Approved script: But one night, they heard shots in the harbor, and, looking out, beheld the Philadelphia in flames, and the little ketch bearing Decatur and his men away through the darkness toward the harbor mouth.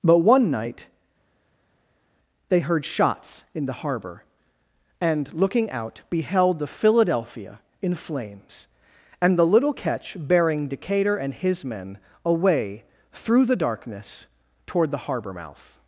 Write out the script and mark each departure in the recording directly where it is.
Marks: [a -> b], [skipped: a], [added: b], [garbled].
But one night, they heard shots in the harbor, and, looking out, beheld the Philadelphia in flames, and the little ketch bearing Decatur and his men away through the darkness toward the harbor mouth.